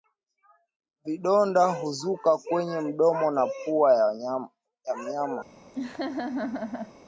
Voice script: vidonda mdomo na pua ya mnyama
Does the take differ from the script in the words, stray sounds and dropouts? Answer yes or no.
yes